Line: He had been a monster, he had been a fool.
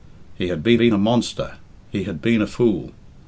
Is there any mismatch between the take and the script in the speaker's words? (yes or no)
yes